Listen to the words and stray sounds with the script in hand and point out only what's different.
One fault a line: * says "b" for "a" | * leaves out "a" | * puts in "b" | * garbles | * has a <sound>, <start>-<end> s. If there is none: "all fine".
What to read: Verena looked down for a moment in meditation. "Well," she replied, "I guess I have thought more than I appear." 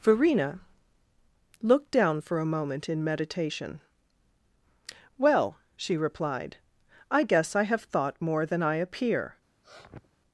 * has a sniff, 9.6-10.2 s